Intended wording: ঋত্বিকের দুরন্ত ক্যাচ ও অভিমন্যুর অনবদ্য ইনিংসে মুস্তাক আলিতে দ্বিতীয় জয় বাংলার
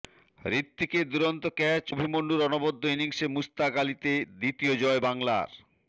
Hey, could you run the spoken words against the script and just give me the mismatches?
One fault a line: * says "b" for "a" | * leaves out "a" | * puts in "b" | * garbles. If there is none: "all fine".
* leaves out "ও"